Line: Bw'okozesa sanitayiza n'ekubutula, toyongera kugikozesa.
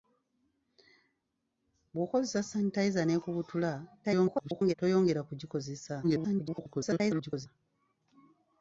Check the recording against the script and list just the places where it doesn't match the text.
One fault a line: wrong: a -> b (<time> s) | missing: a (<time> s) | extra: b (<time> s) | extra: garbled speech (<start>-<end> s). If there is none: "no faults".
extra: garbled speech (4.0-4.7 s)
extra: garbled speech (6.0-7.5 s)